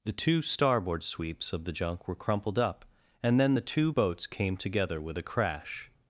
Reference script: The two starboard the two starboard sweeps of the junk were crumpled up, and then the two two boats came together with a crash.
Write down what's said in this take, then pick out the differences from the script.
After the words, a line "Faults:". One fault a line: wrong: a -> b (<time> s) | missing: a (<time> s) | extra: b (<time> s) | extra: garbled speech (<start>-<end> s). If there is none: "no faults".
The two starboard sweeps of the junk were crumpled up, and then the two boats came together with a crash.
Faults:
missing: the two starboard (1.0 s)
missing: two (3.9 s)